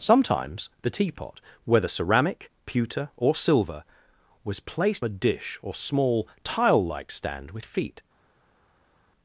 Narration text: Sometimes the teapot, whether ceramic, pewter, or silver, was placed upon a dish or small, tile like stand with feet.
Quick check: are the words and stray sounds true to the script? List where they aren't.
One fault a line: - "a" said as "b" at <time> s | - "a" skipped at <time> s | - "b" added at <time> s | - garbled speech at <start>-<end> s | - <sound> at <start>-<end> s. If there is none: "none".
- "upon" skipped at 5.0 s